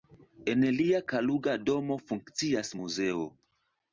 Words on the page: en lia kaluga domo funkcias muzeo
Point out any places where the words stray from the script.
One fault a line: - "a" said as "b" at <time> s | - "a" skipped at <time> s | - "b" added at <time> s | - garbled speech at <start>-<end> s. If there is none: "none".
none